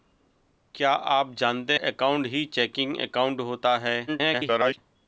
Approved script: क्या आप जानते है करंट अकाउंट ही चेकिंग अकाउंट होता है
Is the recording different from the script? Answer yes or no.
yes